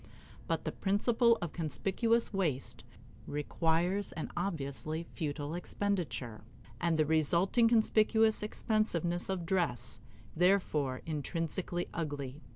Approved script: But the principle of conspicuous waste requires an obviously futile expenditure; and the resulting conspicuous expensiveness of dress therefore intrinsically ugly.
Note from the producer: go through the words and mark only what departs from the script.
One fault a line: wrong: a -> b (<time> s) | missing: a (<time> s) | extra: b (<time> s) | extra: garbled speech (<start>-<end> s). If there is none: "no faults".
no faults